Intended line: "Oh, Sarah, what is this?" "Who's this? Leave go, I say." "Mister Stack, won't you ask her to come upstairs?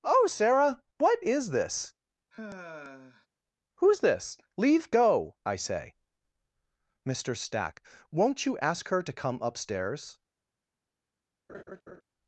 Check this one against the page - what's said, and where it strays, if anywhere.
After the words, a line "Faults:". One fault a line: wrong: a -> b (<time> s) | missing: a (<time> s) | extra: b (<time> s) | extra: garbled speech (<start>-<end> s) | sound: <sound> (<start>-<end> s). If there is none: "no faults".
"Oh, Sarah, what is this?" "Who's this? Leave go, I say." "Mister Stack, won't you ask her to come upstairs?
Faults:
sound: sigh (2.3-3.3 s)
sound: laugh (11.5-12.0 s)